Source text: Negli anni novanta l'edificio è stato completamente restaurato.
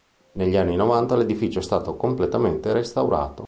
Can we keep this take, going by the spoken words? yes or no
yes